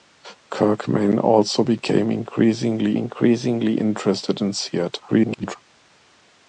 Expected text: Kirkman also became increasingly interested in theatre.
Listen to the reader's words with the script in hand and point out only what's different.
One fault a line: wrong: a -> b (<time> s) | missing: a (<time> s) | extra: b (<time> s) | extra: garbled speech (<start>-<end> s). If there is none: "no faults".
extra: increasingly (2.9 s)
extra: garbled speech (5.1-5.6 s)